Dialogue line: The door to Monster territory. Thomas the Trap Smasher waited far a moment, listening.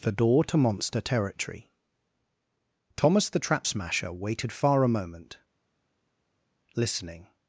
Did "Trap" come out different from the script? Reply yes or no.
no